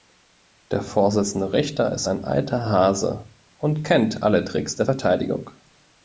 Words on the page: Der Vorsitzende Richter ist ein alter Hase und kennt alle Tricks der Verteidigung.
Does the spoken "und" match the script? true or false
true